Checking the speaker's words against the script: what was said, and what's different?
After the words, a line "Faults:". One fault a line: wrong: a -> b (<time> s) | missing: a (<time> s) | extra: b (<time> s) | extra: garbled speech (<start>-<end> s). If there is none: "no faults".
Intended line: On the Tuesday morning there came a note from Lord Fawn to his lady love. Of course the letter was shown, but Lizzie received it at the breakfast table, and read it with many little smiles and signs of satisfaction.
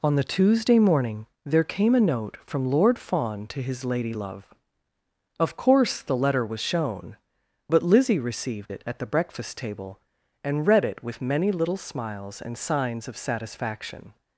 On the Tuesday morning there came a note from Lord Fawn to his lady love. Of course the letter was shown, but Lizzie received it at the breakfast table, and read it with many little smiles and signs of satisfaction.
Faults:
no faults